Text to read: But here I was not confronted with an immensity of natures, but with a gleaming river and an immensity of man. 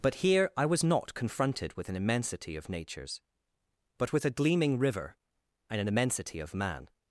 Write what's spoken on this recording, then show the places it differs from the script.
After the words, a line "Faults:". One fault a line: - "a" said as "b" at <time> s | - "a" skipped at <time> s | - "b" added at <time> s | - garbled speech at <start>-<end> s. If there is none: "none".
But here I was not confronted with an immensity of natures, but with a gleaming river and an immensity of man.
Faults:
none